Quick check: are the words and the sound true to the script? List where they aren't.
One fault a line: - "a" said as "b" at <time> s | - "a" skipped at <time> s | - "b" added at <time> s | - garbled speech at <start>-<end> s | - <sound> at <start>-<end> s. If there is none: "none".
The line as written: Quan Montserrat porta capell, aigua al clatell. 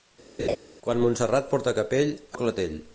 - laugh at 0.4-0.6 s
- "aigua" skipped at 2.1 s